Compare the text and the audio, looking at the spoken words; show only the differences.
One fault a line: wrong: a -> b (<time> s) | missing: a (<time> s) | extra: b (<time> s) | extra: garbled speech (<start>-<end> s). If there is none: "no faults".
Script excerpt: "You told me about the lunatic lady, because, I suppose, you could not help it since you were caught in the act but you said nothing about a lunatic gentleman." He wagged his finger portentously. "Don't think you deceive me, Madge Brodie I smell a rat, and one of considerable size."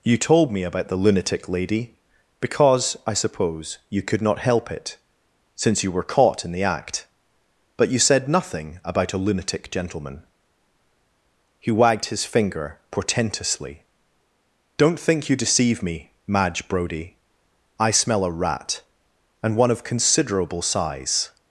no faults